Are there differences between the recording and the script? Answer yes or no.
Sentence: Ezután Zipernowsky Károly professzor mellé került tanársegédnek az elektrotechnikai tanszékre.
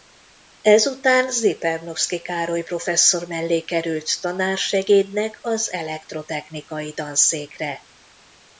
no